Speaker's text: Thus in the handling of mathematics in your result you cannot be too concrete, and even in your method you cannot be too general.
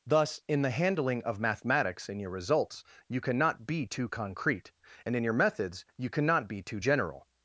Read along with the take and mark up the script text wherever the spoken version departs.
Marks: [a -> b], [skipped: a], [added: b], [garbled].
Thus in the handling of mathematics in your [result -> results] you cannot be too concrete, and [skipped: even] in your [method -> methods] you cannot be too general.